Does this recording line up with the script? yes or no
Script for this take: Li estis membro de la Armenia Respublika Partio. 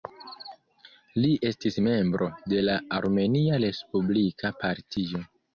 yes